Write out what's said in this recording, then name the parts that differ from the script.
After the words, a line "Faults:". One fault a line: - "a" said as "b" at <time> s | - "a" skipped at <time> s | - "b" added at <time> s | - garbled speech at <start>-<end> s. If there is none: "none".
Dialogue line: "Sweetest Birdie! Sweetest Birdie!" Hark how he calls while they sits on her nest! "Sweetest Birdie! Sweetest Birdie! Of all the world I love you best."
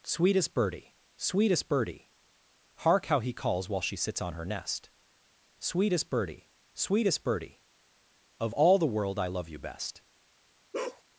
"Sweetest Birdie! Sweetest Birdie!" Hark how he calls while she sits on her nest! "Sweetest Birdie! Sweetest Birdie! Of all the world I love you best."
Faults:
- "they" said as "she" at 3.8 s